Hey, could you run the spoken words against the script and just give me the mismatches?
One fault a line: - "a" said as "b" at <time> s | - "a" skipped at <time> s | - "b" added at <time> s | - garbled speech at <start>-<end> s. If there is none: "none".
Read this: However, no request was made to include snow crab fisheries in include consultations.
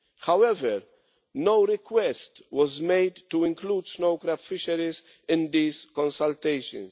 - "include" said as "these" at 5.5 s